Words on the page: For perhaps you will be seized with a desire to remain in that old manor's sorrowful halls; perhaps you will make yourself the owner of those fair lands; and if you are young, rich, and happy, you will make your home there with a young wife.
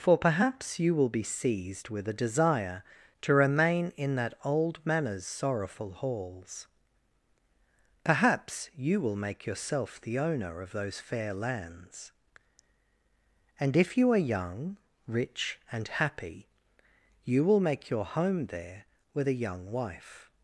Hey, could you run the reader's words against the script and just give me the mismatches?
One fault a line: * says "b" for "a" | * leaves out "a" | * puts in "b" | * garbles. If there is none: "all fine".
all fine